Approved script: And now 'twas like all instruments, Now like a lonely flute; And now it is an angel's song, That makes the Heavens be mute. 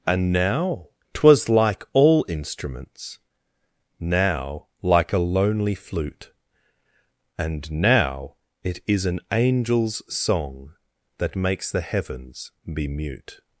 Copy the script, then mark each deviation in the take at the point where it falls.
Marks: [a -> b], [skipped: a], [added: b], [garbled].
And now 'twas like all instruments, Now like a lonely flute; And now it is an angel's song, That makes the Heavens be mute.